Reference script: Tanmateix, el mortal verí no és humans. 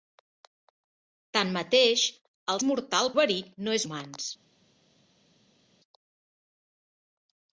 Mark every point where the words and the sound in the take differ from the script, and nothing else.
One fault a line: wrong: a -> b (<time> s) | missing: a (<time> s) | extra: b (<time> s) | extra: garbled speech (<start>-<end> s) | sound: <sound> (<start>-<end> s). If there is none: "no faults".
no faults